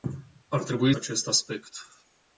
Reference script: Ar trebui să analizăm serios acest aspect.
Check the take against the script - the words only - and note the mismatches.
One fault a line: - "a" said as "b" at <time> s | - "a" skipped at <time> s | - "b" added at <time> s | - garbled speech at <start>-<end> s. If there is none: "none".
- "să analizăm serios" skipped at 0.9 s